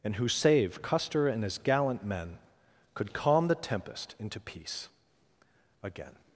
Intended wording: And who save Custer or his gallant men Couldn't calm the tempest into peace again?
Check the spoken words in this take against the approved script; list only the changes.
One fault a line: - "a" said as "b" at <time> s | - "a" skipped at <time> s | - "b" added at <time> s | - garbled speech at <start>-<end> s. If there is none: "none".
- "or" said as "and" at 1.3 s
- "Couldn't" said as "Could" at 2.9 s